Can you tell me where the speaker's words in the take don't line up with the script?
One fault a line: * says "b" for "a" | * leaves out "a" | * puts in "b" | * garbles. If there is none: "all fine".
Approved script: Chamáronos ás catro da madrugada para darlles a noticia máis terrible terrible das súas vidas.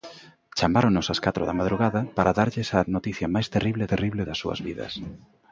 all fine